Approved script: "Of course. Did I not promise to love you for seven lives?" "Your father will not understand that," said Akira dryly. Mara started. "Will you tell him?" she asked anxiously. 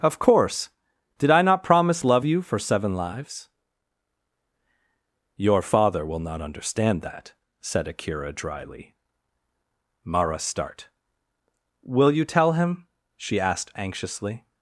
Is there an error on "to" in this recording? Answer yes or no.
yes